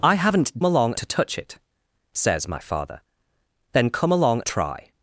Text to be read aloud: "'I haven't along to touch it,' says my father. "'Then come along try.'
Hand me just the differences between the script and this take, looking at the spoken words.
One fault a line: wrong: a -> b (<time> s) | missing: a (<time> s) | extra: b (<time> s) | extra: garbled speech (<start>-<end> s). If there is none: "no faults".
no faults